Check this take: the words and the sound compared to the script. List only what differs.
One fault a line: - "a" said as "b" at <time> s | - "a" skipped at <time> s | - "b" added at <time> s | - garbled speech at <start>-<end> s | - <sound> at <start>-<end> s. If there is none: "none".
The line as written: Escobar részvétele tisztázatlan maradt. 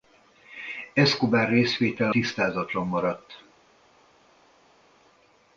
none